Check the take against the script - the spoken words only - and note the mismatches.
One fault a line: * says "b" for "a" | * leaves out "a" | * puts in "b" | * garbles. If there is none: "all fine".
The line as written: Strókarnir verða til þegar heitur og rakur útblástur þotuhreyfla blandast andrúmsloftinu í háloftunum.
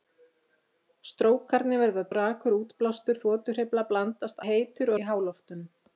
* leaves out "til þegar heitur"
* says "heitur" for "andrúmsloftinu"